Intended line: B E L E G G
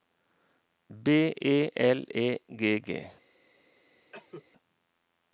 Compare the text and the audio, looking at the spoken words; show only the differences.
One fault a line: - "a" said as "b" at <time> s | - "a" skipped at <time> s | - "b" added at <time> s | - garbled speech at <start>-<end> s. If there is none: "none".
none